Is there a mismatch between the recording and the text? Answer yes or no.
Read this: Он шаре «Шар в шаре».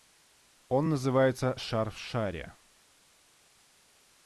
yes